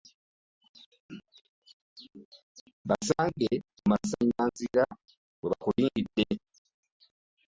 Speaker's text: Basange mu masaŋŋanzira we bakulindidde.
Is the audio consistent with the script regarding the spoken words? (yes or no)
yes